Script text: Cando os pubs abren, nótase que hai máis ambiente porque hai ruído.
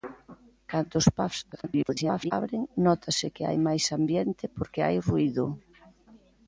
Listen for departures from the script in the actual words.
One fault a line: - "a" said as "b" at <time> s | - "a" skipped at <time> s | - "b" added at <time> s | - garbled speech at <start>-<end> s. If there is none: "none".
- garbled speech at 1.5-2.3 s